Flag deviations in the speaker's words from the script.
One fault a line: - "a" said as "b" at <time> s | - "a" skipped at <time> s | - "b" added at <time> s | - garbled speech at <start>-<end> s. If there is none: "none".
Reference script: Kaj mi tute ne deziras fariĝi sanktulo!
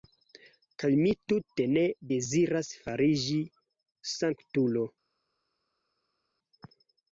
none